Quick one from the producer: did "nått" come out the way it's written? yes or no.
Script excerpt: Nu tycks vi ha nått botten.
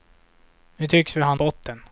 no